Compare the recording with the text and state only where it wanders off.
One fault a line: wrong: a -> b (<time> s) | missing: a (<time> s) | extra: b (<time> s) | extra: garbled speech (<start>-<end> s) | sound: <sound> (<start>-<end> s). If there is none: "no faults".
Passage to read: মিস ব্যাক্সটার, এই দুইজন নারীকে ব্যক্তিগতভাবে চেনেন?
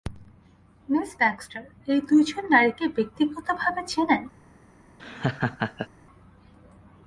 sound: laugh (5.0-5.9 s)